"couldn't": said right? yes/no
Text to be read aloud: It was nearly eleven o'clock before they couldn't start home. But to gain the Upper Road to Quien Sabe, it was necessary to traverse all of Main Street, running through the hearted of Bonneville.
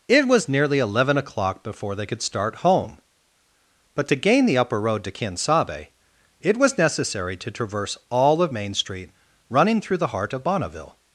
no